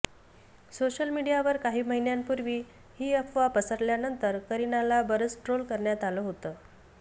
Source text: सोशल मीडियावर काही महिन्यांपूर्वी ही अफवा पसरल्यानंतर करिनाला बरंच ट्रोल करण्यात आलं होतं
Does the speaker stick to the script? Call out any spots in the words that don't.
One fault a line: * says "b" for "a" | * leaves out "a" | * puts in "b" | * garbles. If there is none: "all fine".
all fine